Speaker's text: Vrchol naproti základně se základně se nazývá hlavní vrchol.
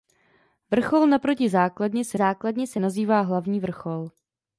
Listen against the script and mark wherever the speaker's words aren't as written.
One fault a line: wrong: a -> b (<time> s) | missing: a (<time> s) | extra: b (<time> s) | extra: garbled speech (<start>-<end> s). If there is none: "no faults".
no faults